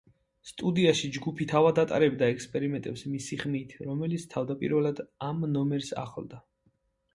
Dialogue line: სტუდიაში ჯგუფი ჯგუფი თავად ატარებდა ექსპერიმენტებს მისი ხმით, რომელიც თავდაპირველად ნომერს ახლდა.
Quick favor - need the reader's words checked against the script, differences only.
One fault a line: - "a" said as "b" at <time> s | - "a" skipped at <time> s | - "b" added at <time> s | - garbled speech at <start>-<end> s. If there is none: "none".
- "ჯგუფი" skipped at 1.4 s
- "ამ" added at 5.3 s